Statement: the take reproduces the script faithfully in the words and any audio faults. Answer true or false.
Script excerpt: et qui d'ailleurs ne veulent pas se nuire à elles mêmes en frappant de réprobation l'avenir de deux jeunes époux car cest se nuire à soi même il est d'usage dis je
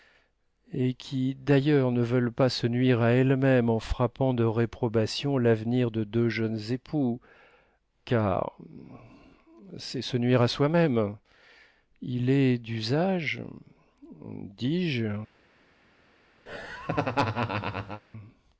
false